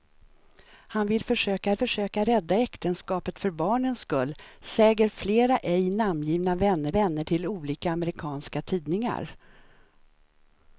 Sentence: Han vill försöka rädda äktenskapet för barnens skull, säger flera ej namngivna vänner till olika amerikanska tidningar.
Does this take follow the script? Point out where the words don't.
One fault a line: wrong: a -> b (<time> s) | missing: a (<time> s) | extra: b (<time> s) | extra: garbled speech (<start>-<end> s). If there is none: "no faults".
extra: försöka (1.7 s)
extra: vänner (6.9 s)